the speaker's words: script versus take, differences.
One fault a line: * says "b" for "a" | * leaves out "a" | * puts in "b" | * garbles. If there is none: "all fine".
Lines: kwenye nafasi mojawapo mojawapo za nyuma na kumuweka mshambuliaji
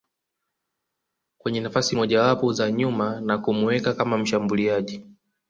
* leaves out "mojawapo"
* puts in "kama"